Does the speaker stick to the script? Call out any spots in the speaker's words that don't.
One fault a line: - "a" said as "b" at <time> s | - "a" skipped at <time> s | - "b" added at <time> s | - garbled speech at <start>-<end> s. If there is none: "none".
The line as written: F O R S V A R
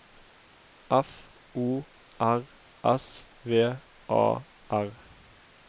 none